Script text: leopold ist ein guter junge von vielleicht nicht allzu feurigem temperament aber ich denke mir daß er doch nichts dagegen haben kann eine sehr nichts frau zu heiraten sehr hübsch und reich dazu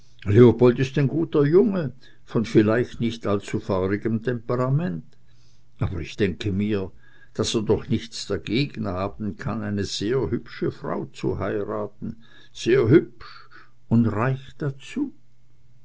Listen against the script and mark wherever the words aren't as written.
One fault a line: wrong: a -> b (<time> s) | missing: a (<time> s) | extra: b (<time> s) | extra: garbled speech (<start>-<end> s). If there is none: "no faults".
wrong: nichts -> hübsche (10.3 s)